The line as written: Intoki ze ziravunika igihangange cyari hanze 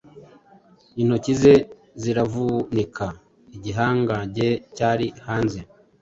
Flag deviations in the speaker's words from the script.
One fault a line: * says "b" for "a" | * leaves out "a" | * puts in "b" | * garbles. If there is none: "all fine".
all fine